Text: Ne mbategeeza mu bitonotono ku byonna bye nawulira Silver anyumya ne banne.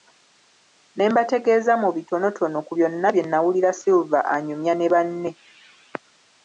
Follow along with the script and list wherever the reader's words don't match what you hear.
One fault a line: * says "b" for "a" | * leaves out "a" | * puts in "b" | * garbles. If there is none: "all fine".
all fine